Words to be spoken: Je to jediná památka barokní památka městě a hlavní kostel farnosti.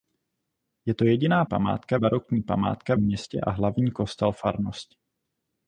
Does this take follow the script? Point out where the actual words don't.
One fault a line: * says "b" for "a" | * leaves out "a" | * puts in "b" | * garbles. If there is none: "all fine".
all fine